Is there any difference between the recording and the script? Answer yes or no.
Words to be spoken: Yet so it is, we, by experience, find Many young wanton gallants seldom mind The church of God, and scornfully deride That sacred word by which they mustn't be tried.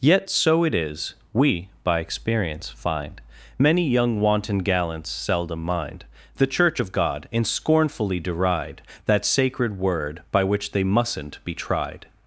no